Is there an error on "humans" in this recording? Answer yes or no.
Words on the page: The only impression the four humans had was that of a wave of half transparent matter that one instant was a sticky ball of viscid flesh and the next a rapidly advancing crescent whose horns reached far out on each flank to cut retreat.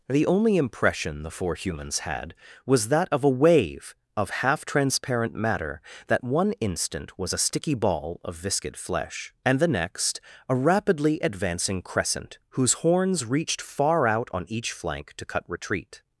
no